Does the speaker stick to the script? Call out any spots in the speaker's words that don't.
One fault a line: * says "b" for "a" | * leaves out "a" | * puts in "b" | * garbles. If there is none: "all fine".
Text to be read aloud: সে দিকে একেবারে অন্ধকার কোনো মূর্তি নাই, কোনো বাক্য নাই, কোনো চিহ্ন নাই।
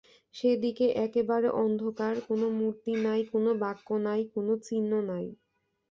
all fine